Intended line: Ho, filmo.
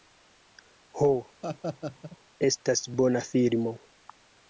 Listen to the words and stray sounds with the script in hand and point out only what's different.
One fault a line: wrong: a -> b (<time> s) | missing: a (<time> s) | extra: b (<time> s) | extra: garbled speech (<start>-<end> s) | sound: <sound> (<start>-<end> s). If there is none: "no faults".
sound: laugh (1.4-2.2 s)
extra: estas bona (2.5 s)